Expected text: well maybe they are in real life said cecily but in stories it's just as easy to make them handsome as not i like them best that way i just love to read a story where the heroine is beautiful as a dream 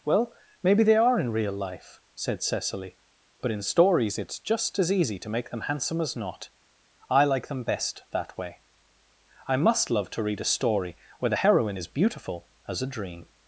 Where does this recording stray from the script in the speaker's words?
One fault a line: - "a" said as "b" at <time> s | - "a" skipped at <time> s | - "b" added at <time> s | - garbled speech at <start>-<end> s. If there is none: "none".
- "just" said as "must" at 9.6 s